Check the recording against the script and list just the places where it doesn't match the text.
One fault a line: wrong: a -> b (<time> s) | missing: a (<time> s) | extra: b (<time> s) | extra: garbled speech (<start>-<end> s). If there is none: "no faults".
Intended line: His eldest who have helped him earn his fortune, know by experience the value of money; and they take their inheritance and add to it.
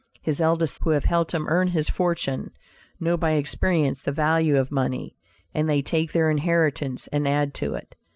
no faults